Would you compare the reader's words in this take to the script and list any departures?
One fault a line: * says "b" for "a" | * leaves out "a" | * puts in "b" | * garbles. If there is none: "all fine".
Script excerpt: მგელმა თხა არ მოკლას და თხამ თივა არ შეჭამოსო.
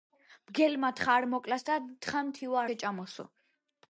* leaves out "არ"